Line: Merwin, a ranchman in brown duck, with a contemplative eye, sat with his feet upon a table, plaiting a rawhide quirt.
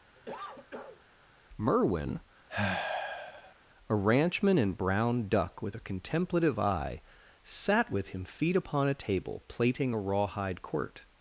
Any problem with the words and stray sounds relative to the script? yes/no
yes